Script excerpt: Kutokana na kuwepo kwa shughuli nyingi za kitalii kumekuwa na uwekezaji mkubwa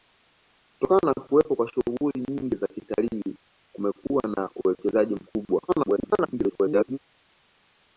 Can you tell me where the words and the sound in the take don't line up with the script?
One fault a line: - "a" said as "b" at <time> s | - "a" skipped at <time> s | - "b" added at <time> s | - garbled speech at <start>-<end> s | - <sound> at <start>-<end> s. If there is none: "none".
- garbled speech at 5.7-7.0 s